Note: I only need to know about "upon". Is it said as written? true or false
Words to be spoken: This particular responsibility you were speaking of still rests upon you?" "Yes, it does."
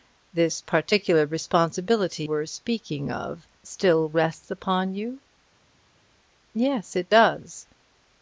true